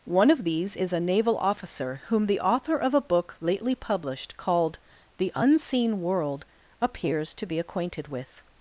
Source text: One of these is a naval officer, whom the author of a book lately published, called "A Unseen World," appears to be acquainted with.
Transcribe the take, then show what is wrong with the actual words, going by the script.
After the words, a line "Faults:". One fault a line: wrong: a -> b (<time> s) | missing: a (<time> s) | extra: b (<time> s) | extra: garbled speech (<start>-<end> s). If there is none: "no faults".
One of these is a naval officer, whom the author of a book lately published, called "The Unseen World," appears to be acquainted with.
Faults:
wrong: A -> The (5.2 s)